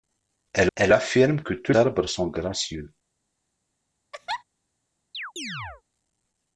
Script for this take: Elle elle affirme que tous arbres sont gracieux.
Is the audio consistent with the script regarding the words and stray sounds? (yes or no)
no